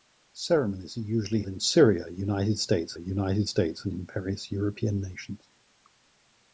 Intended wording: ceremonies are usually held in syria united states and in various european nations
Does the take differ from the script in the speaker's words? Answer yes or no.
yes